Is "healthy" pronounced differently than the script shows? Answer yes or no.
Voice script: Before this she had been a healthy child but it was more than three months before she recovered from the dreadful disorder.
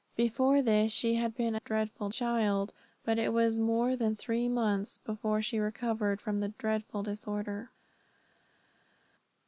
yes